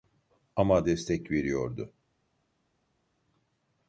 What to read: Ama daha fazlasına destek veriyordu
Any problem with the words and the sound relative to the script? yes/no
yes